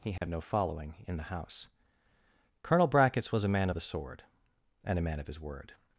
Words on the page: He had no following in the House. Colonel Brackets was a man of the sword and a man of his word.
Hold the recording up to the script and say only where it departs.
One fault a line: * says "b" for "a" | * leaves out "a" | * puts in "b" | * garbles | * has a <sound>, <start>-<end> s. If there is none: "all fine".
* has a dropout, 0.2-0.2 s